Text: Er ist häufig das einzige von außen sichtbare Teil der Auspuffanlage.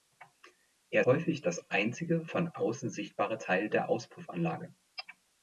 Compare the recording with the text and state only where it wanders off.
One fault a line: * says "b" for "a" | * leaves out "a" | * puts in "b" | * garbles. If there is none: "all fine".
* leaves out "ist"